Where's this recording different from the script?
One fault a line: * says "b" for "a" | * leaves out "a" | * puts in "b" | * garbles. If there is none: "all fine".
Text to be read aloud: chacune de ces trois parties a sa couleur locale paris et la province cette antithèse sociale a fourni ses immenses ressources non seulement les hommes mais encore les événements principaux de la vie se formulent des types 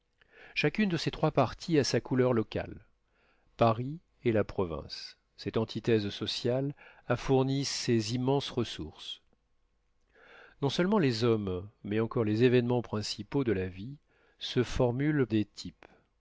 all fine